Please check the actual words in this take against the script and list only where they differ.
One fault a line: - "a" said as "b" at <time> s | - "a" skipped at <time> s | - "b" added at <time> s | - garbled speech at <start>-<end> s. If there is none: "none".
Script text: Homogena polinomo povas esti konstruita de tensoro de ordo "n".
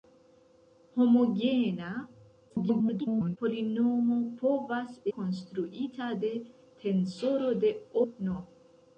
- garbled speech at 2.5-3.4 s
- "esti" skipped at 5.0 s
- "ordo" skipped at 7.8 s